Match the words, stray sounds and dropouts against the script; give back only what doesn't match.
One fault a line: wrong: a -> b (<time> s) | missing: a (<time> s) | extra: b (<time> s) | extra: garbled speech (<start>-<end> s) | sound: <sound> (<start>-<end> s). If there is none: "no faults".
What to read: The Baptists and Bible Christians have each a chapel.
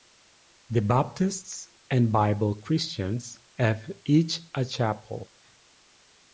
no faults